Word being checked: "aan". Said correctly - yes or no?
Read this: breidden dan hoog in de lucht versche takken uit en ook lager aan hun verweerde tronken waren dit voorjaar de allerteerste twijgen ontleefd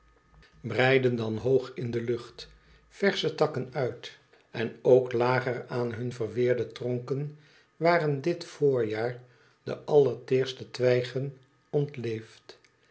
yes